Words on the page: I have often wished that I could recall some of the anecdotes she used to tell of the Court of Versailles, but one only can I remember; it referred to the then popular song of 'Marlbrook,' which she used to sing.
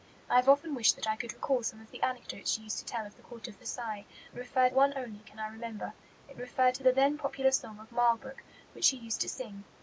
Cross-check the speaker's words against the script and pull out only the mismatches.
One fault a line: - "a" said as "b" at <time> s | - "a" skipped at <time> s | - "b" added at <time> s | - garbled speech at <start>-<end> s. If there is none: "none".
- "but" said as "referred" at 4.3 s